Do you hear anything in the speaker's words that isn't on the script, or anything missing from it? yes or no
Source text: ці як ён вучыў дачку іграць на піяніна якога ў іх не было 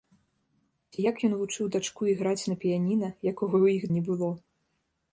no